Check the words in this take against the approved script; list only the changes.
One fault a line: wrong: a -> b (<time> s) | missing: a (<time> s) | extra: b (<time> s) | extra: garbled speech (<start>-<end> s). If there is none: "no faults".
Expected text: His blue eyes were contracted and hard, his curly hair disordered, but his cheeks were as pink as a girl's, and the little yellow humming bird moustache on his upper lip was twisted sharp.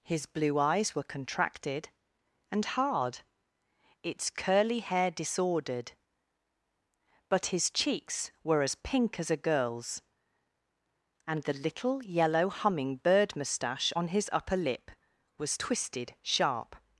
wrong: his -> its (4.0 s)